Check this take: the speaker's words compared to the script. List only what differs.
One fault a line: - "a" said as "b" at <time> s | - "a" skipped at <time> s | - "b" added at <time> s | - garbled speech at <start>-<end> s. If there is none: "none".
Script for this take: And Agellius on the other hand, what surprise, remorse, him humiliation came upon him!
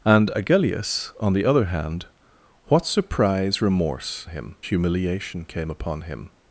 none